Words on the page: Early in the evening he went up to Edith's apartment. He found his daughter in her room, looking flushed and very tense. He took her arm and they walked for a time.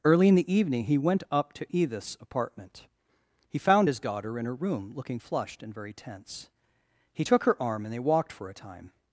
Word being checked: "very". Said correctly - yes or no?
yes